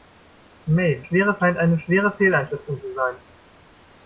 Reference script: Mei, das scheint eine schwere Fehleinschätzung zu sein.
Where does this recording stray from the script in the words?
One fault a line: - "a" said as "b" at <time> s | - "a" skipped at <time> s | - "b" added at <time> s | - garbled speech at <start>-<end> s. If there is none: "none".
- "das" said as "schwere" at 1.0 s